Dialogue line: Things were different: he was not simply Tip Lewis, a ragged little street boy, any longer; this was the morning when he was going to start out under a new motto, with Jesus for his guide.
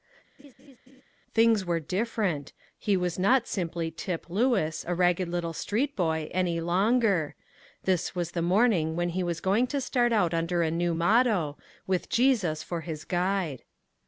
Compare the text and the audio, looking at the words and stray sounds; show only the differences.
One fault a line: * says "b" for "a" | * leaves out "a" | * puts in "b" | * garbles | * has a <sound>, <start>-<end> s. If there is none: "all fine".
* has a laugh, 0.4-1.0 s